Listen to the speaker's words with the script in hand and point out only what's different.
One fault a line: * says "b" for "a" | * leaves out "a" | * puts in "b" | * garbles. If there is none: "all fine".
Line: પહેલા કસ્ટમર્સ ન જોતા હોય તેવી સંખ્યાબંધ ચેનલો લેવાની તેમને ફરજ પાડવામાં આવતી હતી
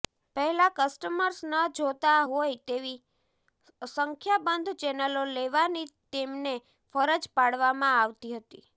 all fine